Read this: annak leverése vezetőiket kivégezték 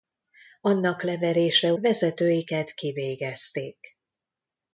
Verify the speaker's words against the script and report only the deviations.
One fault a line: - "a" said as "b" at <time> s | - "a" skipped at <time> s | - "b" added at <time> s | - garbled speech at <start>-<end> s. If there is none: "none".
none